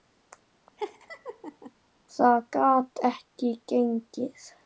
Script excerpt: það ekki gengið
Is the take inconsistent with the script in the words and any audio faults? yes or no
yes